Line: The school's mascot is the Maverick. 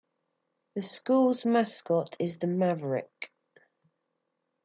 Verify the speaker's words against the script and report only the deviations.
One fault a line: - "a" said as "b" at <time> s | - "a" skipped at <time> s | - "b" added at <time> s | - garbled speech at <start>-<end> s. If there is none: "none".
none